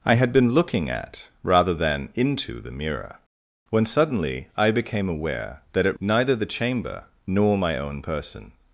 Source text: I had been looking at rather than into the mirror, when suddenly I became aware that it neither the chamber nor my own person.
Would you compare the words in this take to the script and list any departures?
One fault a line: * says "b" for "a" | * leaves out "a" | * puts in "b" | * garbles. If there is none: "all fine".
all fine